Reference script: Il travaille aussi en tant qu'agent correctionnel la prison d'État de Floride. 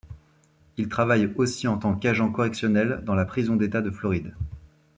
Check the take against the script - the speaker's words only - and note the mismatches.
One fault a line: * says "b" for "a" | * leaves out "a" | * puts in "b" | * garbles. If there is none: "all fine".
* puts in "dans"